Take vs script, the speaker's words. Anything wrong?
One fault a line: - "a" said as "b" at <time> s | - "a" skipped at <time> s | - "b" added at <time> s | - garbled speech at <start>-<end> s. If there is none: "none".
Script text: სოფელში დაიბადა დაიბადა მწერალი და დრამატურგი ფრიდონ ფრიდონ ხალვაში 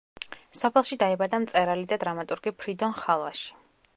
- "დაიბადა" skipped at 1.4 s
- "ფრიდონ" skipped at 3.0 s